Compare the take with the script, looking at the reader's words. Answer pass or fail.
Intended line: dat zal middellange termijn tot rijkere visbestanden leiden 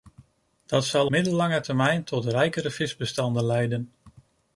pass